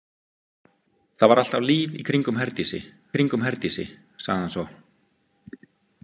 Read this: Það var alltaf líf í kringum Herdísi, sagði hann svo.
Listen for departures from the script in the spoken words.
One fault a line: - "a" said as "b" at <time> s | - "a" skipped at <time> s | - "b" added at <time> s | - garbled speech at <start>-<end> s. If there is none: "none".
- "kringum Herdísi" added at 3.2 s